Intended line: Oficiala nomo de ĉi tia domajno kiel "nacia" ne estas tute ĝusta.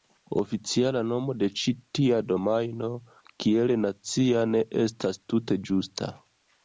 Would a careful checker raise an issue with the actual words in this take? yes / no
no